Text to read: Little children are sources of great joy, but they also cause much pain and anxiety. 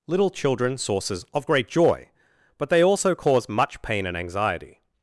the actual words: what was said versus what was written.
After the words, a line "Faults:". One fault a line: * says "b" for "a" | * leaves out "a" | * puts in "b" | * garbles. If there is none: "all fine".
Little children sources of great joy, but they also cause much pain and anxiety.
Faults:
* leaves out "are"